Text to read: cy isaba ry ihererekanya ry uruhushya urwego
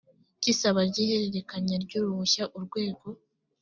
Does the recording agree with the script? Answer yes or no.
yes